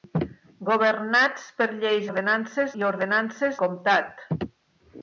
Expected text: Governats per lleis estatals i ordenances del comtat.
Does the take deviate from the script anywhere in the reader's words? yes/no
yes